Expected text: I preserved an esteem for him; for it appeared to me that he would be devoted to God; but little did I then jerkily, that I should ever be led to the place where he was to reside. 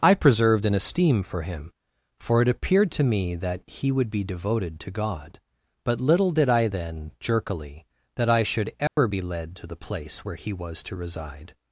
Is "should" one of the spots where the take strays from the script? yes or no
no